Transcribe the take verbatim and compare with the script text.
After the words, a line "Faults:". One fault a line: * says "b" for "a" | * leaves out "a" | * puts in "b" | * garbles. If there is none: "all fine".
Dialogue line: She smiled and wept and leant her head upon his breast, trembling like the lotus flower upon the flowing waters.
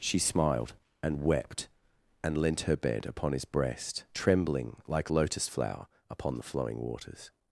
She smiled and wept and leant her bed upon his breast, trembling like lotus flower upon the flowing waters.
Faults:
* says "bed" for "head"
* leaves out "the"